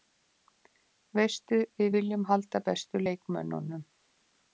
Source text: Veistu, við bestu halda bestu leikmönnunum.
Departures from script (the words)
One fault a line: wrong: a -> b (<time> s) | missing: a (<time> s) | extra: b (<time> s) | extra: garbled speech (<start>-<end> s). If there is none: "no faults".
wrong: bestu -> viljum (2.0 s)